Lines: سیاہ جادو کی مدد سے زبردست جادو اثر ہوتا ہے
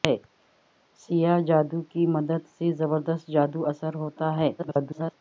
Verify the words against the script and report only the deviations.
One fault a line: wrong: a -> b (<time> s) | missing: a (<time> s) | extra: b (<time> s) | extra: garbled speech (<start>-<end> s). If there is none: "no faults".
extra: garbled speech (4.6-5.1 s)